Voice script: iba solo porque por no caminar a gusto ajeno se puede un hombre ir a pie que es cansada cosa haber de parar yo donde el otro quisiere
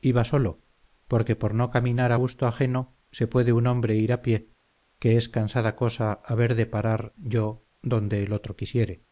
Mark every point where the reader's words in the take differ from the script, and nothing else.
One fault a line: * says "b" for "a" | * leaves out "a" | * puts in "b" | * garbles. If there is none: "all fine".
all fine